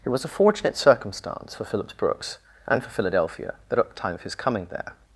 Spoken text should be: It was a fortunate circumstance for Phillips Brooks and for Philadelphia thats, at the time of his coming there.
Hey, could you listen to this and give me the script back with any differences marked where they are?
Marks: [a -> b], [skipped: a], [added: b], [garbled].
It was a fortunate circumstance for Phillips Brooks and for Philadelphia [thats, -> that] at the time of his coming there.